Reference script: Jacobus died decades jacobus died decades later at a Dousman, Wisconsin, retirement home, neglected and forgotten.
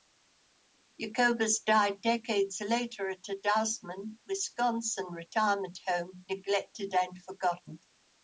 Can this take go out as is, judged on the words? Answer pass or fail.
fail